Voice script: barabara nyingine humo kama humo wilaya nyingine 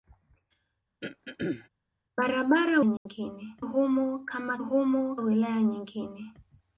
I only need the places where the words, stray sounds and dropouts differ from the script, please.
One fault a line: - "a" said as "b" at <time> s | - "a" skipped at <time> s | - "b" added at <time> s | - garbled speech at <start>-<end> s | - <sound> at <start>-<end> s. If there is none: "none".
- throat clearing at 1.0-1.7 s
- dropout at 3.0-3.1 s